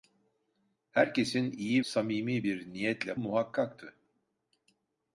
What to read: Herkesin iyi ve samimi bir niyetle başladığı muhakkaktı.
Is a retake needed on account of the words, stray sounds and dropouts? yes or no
yes